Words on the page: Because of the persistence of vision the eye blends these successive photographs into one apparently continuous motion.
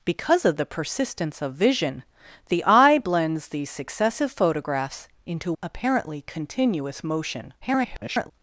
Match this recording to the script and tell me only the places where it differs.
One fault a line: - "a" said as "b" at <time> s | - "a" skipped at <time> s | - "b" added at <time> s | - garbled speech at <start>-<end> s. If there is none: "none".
- "one" skipped at 5.5 s
- garbled speech at 7.6-8.3 s